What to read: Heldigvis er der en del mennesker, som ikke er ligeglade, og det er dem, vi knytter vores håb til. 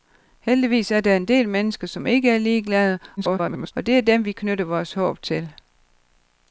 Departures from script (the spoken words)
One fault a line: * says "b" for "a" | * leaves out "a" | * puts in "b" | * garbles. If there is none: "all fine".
* garbles